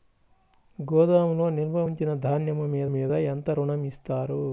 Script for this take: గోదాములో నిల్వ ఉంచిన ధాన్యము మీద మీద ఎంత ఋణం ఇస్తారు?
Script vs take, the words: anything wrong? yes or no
no